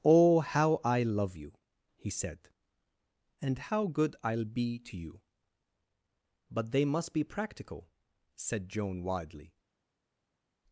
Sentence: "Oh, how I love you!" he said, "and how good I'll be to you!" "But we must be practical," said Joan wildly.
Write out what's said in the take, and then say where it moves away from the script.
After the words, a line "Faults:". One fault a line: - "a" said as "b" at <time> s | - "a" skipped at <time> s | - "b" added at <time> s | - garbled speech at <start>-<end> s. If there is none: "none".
"Oh, how I love you!" he said, "and how good I'll be to you!" "But they must be practical," said Joan wildly.
Faults:
- "we" said as "they" at 6.7 s